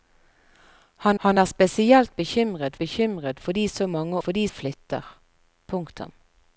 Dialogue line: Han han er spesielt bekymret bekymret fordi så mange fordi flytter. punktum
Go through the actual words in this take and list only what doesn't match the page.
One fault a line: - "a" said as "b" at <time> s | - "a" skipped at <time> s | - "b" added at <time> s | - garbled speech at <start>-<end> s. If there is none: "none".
none